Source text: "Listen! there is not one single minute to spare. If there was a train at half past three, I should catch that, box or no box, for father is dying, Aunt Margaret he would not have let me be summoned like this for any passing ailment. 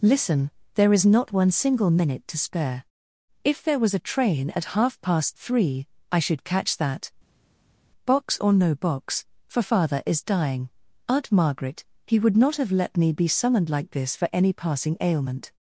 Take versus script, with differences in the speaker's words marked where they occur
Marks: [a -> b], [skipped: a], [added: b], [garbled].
"Listen! there is not one single minute to spare. If there was a train at half past three, I should catch that, box or no box, for father is dying, Aunt Margaret he would not have let me be summoned like this for any passing ailment.